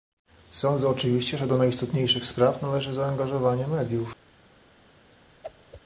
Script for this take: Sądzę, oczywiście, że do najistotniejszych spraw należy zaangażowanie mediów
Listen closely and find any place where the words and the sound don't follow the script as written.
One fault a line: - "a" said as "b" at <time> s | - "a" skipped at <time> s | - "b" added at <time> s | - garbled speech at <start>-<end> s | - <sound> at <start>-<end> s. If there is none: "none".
- whoosh at 5.4-5.8 s